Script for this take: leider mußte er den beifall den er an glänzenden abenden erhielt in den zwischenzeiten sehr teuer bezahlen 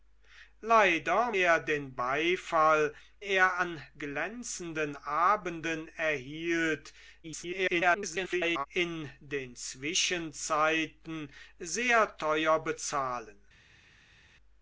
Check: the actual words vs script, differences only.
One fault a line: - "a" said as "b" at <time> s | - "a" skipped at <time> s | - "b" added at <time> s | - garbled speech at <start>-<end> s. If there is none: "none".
- "mußte" skipped at 1.3 s
- "den" skipped at 2.9 s
- garbled speech at 7.2-8.7 s